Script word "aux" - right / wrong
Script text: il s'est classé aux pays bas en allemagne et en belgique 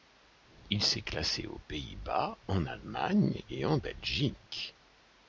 right